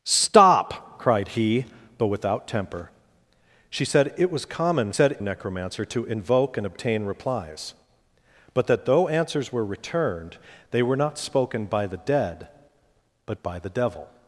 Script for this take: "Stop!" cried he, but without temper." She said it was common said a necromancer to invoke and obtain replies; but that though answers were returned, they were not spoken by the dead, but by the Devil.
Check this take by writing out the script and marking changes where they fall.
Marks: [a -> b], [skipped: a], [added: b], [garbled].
"Stop!" cried he, but without temper." She said it was common said a necromancer to invoke and obtain replies; but that though answers were returned, they were not spoken by the dead, but by the Devil.